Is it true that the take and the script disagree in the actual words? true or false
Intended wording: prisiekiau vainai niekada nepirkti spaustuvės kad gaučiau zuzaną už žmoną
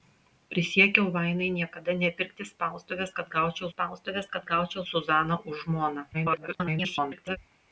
true